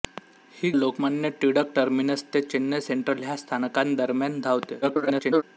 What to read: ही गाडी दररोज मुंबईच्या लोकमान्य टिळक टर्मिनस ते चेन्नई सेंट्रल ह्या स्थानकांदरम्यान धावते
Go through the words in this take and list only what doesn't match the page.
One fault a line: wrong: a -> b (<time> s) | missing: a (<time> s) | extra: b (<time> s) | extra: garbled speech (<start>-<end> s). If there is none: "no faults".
missing: गाडी दररोज मुंबईच्या (0.7 s)
extra: garbled speech (4.8-5.4 s)